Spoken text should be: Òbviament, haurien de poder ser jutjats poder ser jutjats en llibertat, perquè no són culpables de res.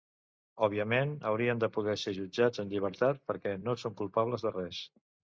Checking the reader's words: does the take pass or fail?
fail